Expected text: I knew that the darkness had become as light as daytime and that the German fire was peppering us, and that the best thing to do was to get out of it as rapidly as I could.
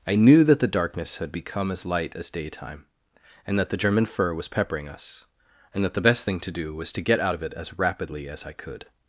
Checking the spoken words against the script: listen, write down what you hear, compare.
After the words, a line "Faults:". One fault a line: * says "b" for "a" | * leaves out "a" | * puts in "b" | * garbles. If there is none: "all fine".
I knew that the darkness had become as light as daytime and that the German fur was peppering us, and that the best thing to do was to get out of it as rapidly as I could.
Faults:
* says "fur" for "fire"